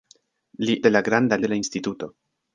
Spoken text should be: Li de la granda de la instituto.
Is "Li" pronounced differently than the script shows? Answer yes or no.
no